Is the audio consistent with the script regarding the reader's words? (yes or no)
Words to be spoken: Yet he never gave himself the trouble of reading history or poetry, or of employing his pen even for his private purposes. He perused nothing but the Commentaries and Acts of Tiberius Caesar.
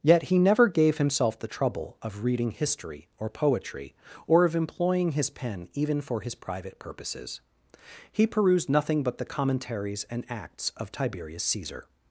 yes